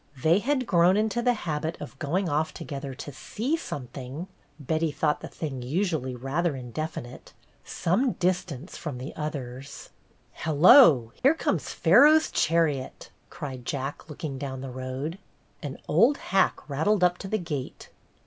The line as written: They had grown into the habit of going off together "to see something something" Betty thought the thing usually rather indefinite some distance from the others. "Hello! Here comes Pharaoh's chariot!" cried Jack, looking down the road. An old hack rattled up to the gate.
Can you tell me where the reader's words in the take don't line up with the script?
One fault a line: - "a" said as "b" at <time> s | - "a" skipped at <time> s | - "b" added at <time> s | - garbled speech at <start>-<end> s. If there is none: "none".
- "something" skipped at 4.3 s